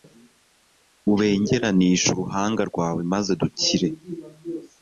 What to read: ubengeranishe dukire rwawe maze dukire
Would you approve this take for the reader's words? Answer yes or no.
no